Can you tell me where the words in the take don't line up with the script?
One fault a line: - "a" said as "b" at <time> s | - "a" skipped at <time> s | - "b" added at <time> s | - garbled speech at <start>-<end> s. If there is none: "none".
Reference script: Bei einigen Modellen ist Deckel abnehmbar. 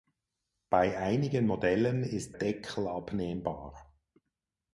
none